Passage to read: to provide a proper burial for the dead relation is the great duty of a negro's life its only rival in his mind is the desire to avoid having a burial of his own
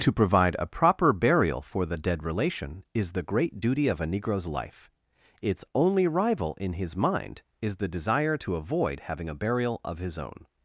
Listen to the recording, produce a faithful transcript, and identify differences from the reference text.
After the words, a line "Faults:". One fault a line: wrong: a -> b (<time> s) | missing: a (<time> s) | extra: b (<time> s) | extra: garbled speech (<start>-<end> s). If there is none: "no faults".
to provide a proper burial for the dead relation is the great duty of a negro's life its only rival in his mind is the desire to avoid having a burial of his own
Faults:
no faults